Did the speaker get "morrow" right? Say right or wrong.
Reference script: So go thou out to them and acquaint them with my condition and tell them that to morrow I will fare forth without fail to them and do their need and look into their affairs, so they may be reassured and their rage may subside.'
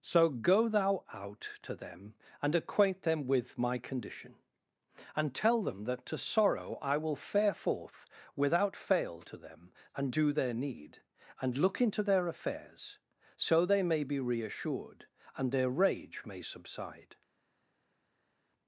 wrong